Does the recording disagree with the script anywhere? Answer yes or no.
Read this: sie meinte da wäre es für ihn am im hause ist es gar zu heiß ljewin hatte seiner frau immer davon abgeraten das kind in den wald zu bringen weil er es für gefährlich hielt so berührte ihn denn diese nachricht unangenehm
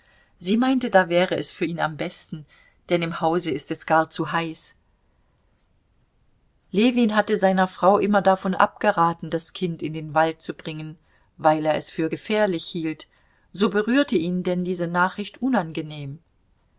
yes